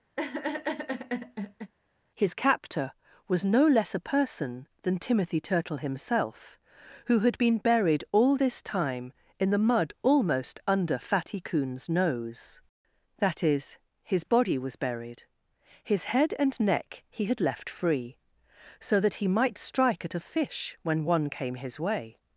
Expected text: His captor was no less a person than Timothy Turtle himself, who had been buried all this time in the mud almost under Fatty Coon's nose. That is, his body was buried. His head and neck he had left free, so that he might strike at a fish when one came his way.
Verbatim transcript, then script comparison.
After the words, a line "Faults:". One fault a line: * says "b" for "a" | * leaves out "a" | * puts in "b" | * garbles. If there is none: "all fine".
His captor was no less a person than Timothy Turtle himself, who had been buried all this time in the mud almost under Fatty Coon's nose. That is, his body was buried. His head and neck he had left free, so that he might strike at a fish when one came his way.
Faults:
all fine